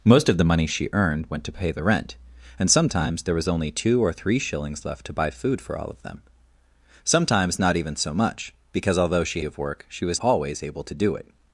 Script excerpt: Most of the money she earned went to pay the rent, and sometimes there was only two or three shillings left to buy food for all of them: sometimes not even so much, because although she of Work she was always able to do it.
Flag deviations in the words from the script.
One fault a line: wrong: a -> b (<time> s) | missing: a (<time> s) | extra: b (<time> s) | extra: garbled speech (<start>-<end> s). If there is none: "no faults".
no faults